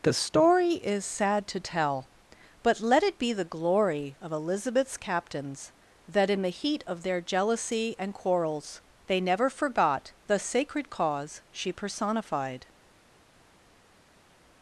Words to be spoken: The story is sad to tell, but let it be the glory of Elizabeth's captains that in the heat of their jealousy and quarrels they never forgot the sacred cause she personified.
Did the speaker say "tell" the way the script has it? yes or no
yes